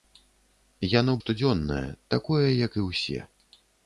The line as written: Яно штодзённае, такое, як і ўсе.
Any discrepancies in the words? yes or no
no